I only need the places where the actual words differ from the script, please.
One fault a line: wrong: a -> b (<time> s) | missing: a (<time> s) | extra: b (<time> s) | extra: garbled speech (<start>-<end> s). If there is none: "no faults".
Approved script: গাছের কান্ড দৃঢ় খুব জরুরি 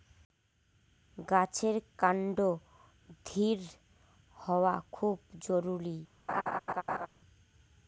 extra: হওয়া (4.4 s)